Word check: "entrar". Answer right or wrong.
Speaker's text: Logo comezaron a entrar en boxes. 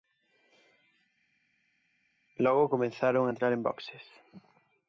right